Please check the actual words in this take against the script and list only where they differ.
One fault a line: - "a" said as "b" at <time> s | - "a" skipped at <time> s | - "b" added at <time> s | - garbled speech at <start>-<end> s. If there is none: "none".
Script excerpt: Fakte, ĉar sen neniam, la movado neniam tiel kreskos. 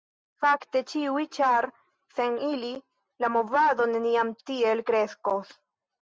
- "ĉiuj" added at 0.9 s
- "neniam" said as "ili" at 2.5 s